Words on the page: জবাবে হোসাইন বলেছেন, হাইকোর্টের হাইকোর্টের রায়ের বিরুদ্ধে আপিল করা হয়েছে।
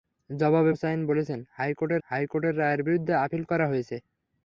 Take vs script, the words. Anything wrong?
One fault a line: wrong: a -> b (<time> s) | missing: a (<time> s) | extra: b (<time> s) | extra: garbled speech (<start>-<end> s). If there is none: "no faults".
no faults